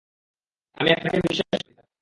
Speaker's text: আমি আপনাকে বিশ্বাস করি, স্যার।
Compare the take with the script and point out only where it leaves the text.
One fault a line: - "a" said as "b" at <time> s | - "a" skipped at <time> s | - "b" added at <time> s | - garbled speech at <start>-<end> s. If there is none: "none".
none